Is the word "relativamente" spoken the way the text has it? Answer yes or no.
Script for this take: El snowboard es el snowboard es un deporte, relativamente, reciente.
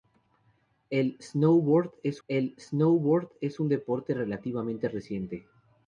yes